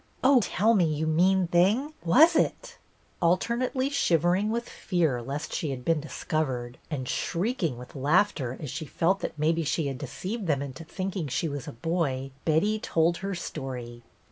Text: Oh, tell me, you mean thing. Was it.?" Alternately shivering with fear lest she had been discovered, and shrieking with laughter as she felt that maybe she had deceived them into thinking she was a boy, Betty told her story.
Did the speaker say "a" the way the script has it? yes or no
yes